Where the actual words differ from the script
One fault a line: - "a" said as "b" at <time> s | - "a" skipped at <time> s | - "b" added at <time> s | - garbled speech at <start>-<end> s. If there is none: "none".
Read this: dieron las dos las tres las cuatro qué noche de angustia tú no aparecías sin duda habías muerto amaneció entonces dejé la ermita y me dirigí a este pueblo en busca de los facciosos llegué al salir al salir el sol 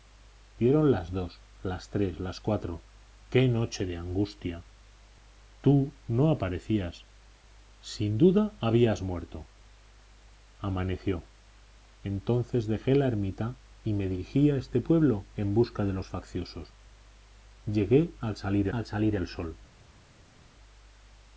none